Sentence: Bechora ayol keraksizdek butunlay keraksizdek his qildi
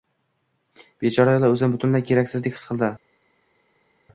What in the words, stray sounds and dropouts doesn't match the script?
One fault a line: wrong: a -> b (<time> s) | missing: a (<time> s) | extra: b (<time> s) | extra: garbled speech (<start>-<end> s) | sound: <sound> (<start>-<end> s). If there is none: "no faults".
wrong: keraksizdek -> o`zini (1.5 s)